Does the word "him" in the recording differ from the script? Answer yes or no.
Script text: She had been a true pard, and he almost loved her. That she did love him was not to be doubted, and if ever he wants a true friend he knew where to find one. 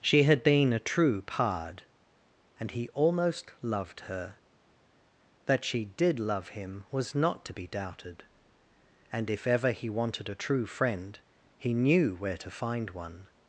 no